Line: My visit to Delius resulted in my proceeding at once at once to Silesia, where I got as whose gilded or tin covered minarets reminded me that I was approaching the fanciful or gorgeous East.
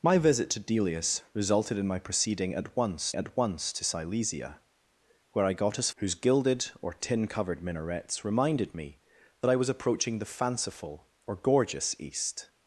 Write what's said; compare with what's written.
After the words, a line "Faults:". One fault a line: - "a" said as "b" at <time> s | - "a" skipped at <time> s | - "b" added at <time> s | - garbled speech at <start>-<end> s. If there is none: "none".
My visit to Delius resulted in my proceeding at once at once to Silesia, where I got as whose gilded or tin covered minarets reminded me that I was approaching the fanciful or gorgeous East.
Faults:
none